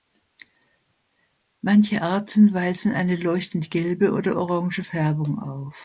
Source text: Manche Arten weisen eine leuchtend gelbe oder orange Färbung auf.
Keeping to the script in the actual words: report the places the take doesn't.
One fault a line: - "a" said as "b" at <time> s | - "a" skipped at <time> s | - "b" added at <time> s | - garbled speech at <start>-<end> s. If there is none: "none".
none